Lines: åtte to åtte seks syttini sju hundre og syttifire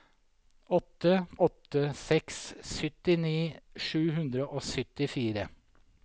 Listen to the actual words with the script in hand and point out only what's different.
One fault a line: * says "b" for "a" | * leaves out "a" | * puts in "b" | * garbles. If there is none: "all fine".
* leaves out "to"